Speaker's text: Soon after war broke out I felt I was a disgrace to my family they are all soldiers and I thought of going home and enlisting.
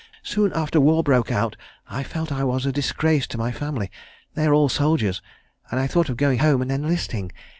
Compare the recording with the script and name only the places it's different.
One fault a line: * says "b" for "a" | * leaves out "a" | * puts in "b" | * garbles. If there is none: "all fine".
all fine